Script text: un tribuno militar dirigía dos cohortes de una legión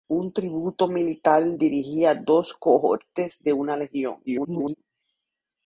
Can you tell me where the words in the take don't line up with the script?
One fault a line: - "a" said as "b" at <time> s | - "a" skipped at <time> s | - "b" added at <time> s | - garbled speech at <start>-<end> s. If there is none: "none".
- garbled speech at 4.3-4.7 s